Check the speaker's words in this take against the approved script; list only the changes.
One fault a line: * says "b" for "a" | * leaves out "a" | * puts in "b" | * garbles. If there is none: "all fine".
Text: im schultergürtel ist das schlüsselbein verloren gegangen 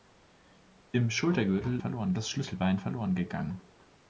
* says "verloren" for "ist"